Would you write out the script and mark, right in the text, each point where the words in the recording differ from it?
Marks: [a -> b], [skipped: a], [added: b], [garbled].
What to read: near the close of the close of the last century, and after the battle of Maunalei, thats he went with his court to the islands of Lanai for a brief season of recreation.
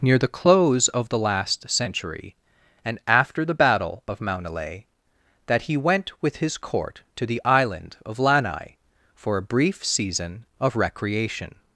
near the close of the [skipped: close of the] last century, and after the battle of Maunalei, [thats -> that] he went with his court to the [islands -> island] of Lanai for a brief season of recreation.